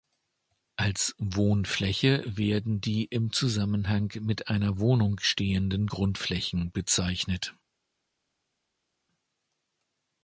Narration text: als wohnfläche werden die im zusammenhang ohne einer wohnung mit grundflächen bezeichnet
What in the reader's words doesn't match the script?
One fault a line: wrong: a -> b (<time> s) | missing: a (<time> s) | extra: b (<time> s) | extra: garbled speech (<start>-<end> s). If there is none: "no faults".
wrong: ohne -> mit (4.2 s)
wrong: mit -> stehenden (5.2 s)